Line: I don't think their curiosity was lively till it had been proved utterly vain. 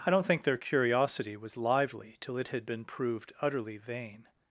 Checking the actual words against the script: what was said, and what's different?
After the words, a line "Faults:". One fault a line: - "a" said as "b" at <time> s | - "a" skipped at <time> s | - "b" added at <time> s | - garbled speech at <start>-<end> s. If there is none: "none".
I don't think their curiosity was lively till it had been proved utterly vain.
Faults:
none